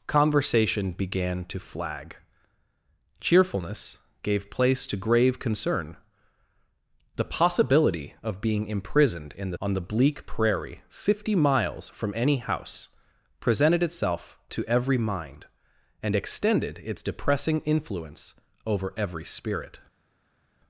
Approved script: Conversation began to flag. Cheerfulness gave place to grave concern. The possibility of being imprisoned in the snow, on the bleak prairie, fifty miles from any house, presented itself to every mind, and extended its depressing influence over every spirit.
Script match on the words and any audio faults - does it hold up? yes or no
no